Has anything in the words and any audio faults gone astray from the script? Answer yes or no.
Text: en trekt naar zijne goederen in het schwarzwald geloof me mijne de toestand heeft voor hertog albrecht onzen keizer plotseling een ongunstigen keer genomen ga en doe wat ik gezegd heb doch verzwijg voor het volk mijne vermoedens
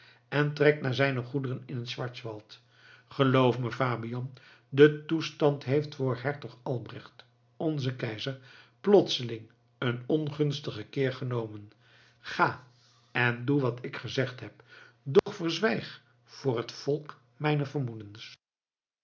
yes